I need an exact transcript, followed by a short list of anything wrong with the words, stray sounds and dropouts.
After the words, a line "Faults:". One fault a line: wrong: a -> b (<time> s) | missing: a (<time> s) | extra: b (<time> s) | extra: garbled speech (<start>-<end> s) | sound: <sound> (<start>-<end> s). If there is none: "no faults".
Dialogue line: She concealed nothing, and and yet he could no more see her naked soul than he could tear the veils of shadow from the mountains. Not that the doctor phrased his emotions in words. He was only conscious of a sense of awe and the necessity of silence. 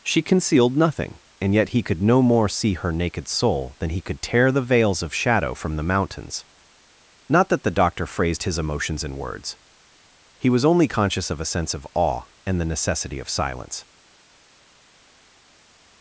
She concealed nothing, and yet he could no more see her naked soul than he could tear the veils of shadow from the mountains. Not that the doctor phrased his emotions in words. He was only conscious of a sense of awe and the necessity of silence.
Faults:
missing: and (1.5 s)